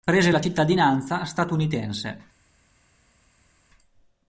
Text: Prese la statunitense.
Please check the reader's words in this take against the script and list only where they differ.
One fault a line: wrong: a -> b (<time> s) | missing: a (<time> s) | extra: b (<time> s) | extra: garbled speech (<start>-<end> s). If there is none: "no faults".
extra: cittadinanza (0.4 s)